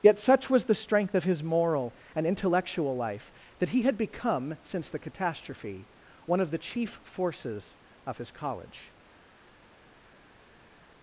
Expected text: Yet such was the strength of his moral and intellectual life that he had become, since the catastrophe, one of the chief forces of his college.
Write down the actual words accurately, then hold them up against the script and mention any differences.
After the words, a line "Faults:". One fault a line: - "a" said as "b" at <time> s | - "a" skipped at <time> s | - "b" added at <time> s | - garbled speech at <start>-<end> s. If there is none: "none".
Yet such was the strength of his moral and intellectual life that he had become, since the catastrophe, one of the chief forces of his college.
Faults:
none